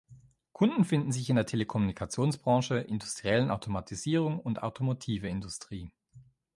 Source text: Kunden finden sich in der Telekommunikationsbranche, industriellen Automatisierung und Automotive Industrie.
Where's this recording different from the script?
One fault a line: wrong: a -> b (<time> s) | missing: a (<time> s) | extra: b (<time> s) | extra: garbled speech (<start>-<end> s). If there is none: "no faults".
no faults